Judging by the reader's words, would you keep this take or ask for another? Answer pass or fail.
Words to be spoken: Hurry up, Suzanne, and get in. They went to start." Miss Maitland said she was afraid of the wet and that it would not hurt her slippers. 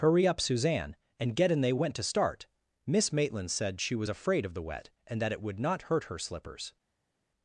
pass